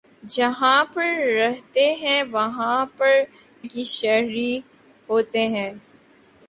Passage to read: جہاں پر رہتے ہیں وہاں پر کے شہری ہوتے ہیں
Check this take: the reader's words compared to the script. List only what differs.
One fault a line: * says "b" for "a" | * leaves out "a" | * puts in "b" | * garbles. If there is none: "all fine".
all fine